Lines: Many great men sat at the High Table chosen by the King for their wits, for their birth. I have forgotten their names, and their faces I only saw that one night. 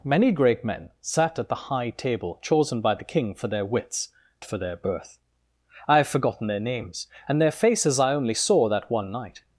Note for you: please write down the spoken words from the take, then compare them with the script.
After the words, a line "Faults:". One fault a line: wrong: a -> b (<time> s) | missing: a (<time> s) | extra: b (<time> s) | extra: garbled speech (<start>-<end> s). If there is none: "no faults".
Many great men sat at the High Table chosen by the King for their wits, for their birth. I have forgotten their names, and their faces I only saw that one night.
Faults:
no faults